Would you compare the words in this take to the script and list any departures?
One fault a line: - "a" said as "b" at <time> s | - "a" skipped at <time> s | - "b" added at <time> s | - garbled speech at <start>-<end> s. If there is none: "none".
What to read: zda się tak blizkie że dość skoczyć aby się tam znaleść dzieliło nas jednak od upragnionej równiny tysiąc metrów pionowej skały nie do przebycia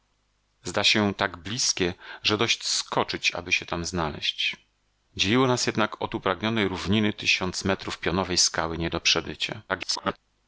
- garbled speech at 9.7-10.2 s